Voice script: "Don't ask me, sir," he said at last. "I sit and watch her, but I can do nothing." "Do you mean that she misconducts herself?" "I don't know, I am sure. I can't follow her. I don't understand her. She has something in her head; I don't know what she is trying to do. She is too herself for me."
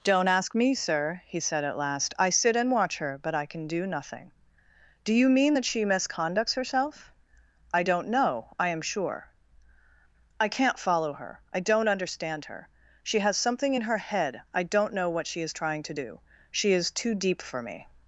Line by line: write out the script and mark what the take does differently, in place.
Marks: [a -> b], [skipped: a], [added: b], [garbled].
"Don't ask me, sir," he said at last. "I sit and watch her, but I can do nothing." "Do you mean that she misconducts herself?" "I don't know, I am sure. I can't follow her. I don't understand her. She has something in her head; I don't know what she is trying to do. She is too [herself -> deep] for me."